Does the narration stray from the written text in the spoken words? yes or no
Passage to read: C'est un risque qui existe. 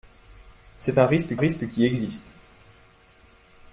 yes